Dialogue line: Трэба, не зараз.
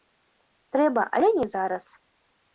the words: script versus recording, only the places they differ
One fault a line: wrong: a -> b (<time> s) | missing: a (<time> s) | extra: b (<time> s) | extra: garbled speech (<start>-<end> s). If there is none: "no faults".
extra: але (1.2 s)